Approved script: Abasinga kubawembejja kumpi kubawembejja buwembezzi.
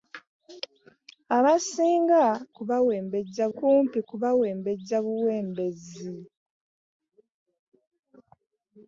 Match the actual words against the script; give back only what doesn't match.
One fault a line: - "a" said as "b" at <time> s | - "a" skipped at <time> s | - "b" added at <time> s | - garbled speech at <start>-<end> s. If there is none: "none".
none